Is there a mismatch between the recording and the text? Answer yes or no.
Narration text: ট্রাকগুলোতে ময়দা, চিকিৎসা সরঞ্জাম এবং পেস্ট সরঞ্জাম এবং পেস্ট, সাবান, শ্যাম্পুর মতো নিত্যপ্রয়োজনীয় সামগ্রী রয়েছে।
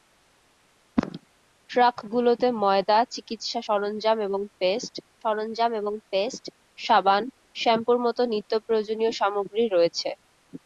no